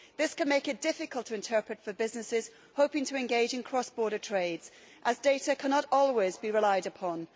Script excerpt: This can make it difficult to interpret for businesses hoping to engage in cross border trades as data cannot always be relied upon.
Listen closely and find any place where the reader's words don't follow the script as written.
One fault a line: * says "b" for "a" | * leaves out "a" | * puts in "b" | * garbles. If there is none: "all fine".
all fine